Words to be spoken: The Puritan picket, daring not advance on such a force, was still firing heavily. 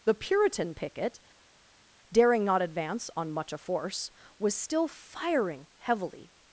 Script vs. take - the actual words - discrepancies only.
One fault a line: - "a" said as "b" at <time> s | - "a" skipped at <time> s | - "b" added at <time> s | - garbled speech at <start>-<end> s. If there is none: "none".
- "such" said as "much" at 3.3 s